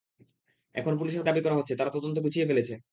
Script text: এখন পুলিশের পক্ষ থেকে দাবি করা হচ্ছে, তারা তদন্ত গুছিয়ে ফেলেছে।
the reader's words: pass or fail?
fail